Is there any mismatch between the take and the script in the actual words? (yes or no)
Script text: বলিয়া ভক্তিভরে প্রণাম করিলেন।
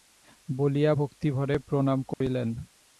no